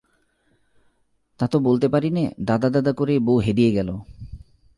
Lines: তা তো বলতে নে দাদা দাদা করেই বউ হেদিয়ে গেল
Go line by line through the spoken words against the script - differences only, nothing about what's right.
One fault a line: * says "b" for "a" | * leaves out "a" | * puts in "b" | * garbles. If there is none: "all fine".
* puts in "পারি"